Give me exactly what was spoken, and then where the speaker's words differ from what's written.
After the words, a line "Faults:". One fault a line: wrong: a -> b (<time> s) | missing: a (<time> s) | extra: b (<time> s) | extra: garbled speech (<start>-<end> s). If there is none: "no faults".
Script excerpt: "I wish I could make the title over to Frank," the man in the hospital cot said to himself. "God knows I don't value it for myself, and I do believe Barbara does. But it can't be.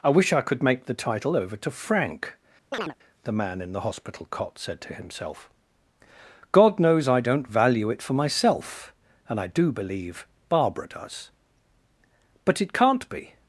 "I wish I could make the title over to Frank," the man in the hospital cot said to himself. "God knows I don't value it for myself, and I do believe Barbara does. But it can't be.
Faults:
no faults